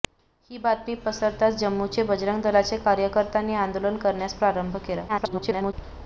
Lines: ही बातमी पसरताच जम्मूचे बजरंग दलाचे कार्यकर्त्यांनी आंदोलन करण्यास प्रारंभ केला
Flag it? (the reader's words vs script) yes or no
yes